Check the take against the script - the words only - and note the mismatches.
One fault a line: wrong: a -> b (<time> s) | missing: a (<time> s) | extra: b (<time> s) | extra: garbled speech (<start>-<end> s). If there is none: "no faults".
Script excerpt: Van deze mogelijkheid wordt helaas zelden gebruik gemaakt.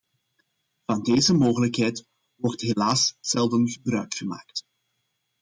no faults